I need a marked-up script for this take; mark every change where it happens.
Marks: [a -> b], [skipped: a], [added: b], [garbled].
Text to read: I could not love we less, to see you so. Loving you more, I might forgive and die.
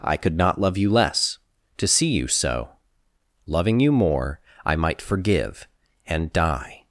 I could not love [we -> you] less, to see you so. Loving you more, I might forgive and die.